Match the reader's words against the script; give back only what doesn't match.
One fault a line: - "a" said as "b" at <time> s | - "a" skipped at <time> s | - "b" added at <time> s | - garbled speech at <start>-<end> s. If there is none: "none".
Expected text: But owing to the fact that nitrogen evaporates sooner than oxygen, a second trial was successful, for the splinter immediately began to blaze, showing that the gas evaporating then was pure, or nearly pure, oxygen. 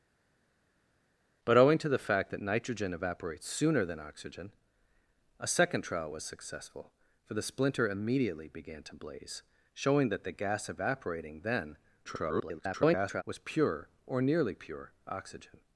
- garbled speech at 12.0-13.2 s